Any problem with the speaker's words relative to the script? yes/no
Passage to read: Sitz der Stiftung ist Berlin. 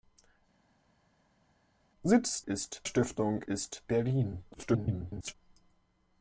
yes